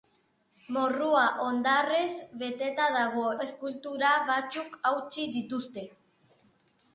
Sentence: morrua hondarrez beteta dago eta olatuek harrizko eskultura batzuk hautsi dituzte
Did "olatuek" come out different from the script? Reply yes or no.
yes